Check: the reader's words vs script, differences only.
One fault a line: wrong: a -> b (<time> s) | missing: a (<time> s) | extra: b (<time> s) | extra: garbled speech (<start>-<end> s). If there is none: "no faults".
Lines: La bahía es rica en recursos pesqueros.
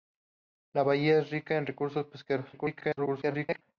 extra: garbled speech (2.5-3.6 s)